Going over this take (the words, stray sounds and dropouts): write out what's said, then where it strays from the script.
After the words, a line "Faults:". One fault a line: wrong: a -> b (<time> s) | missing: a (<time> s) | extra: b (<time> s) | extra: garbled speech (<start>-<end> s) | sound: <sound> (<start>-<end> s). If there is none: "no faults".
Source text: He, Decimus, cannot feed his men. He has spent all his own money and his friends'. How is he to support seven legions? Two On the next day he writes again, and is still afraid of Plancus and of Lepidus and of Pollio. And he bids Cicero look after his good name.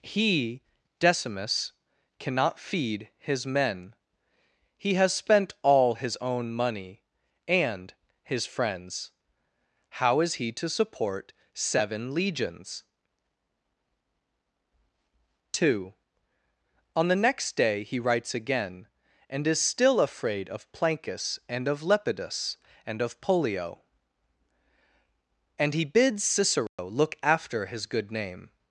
He, Decimus, cannot feed his men. He has spent all his own money and his friends'. How is he to support seven legions? Two On the next day he writes again, and is still afraid of Plancus and of Lepidus and of Pollio. And he bids Cicero look after his good name.
Faults:
sound: dropout (26.7-26.8 s)